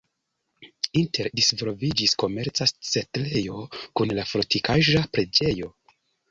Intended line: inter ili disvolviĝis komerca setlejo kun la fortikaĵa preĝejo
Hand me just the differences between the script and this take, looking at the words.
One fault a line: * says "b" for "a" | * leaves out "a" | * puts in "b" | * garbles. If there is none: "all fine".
* leaves out "ili"